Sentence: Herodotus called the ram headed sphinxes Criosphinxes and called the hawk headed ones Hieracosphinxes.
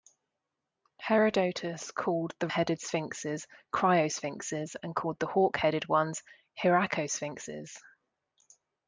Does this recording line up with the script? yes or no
no